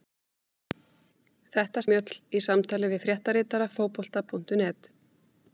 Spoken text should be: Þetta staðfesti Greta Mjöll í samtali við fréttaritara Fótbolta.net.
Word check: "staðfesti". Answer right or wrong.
wrong